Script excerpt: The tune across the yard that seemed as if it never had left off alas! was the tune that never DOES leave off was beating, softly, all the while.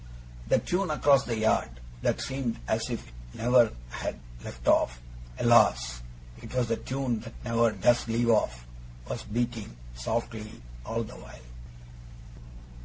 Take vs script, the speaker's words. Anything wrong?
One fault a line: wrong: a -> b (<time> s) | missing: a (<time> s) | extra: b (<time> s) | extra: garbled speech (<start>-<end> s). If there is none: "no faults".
extra: it (6.4 s)